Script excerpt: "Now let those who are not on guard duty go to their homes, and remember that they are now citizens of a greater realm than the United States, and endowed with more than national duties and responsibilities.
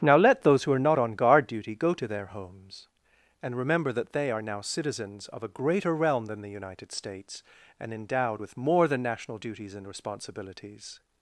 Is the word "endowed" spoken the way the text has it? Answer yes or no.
yes